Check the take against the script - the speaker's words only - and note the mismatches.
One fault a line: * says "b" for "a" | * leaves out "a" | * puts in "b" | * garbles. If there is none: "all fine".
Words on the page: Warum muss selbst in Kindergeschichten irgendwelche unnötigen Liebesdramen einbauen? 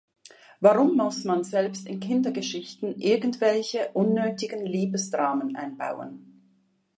* puts in "man"